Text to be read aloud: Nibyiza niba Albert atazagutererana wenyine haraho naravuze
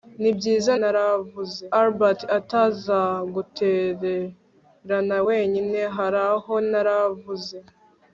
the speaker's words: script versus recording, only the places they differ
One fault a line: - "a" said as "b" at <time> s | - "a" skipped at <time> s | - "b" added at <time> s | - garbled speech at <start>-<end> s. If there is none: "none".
- "niba" said as "naravuze" at 0.8 s